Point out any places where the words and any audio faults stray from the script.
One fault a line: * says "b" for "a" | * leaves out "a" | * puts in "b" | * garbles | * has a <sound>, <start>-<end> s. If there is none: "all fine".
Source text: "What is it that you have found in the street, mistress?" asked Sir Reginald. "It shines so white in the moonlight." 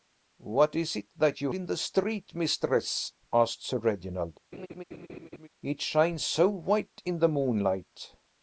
* leaves out "have found"
* has a laugh, 4.5-5.5 s